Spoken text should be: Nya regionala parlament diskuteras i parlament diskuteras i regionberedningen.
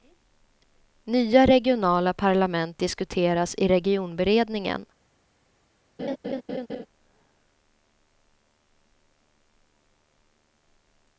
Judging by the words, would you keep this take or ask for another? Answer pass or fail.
fail